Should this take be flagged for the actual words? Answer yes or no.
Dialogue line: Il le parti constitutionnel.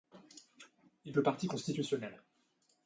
no